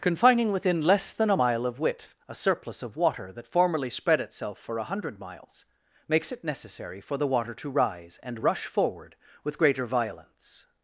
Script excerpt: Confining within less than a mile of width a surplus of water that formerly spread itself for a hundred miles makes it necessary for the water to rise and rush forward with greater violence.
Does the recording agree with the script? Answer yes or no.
yes